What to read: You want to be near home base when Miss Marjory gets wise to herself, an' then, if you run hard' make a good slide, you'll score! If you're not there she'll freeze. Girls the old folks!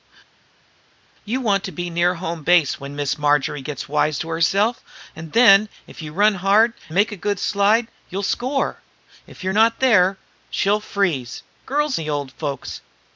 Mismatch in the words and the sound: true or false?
false